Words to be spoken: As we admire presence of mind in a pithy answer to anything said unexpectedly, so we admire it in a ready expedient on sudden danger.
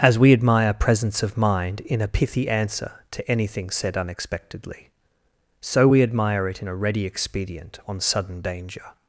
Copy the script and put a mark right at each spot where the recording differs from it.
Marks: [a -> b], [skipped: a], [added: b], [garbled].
As we admire presence of mind in a pithy answer to anything said unexpectedly, so we admire it in a ready expedient on sudden danger.